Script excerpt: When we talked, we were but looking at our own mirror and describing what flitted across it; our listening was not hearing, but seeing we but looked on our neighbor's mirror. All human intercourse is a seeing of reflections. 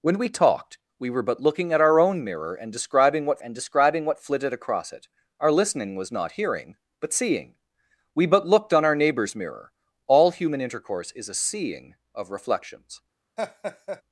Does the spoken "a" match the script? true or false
true